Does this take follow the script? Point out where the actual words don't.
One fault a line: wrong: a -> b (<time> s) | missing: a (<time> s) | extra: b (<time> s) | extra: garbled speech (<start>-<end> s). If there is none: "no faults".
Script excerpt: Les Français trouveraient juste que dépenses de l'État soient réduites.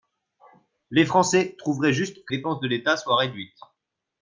no faults